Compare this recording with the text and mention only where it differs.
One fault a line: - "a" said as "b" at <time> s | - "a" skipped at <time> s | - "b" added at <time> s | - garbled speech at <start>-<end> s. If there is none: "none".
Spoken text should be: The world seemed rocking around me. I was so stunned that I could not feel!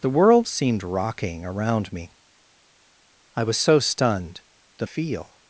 - "I could not" skipped at 4.9 s